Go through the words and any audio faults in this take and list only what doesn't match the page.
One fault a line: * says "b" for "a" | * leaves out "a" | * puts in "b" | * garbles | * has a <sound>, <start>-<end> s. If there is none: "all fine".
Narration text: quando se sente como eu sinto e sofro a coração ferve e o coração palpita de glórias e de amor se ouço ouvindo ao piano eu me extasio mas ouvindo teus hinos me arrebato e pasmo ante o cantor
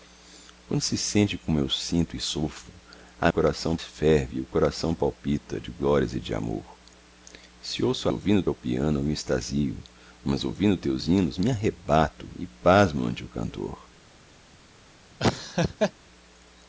* has a laugh, 15.2-15.9 s